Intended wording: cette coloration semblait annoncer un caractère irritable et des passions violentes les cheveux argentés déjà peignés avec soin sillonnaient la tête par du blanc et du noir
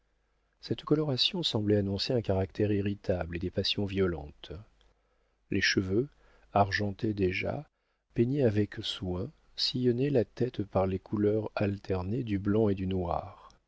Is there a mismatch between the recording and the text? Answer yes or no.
yes